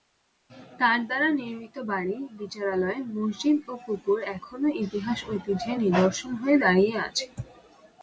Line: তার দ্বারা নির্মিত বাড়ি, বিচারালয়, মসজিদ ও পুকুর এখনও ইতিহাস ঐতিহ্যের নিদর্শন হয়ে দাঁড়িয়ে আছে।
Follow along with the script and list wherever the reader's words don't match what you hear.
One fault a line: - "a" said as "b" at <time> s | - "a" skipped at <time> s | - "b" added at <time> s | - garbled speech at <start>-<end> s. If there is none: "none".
none